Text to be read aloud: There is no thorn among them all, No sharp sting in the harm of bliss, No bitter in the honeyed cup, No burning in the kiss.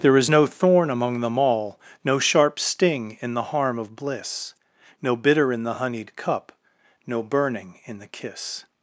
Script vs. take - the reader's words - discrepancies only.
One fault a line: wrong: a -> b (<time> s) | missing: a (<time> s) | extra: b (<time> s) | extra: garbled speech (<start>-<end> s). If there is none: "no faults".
no faults